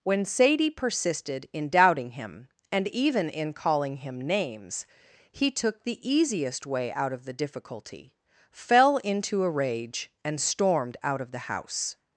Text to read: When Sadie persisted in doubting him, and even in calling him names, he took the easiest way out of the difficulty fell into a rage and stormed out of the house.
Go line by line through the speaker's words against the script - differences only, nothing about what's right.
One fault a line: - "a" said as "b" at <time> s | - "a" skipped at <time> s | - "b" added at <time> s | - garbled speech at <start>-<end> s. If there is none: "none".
none